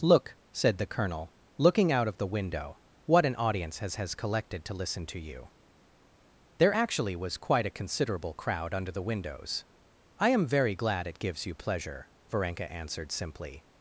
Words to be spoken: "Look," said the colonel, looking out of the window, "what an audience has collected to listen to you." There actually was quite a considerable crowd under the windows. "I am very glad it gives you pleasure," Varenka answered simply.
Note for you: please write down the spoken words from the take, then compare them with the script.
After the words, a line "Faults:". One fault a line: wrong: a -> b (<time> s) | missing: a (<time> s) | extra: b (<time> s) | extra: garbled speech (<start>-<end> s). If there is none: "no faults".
"Look," said the colonel, looking out of the window, "what an audience has has collected to listen to you." There actually was quite a considerable crowd under the windows. "I am very glad it gives you pleasure," Varenka answered simply.
Faults:
extra: has (4.0 s)